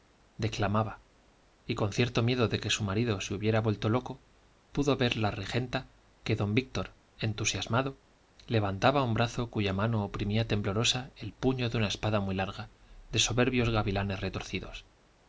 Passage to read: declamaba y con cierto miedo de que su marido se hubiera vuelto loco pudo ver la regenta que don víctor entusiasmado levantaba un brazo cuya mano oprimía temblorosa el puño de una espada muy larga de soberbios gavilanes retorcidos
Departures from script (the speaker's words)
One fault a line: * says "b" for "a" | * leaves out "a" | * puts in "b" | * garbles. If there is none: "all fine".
all fine